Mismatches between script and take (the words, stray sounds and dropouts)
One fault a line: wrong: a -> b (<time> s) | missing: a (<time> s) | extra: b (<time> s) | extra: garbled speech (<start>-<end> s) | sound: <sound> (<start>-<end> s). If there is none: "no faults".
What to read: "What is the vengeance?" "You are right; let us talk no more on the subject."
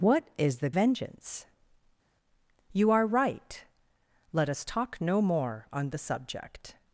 no faults